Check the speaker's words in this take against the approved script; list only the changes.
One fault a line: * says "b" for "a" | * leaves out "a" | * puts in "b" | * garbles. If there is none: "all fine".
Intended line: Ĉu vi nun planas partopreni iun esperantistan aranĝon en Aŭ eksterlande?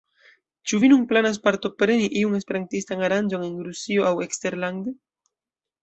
* puts in "Rusio"